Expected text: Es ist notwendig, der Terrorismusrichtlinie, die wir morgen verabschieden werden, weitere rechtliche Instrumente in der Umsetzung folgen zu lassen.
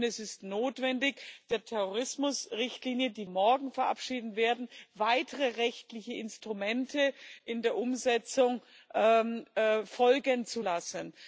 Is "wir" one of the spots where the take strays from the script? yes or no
yes